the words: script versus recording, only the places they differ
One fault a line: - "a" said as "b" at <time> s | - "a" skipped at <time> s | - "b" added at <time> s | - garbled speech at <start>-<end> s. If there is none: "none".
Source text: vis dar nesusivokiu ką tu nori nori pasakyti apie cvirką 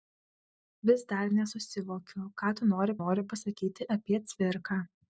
none